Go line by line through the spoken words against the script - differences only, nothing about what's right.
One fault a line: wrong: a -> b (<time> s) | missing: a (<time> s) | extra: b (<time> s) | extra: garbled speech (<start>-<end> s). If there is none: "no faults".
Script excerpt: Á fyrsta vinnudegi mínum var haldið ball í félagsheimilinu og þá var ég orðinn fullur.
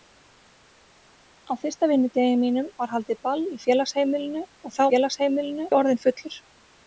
wrong: var -> félagsheimilinu (4.9 s)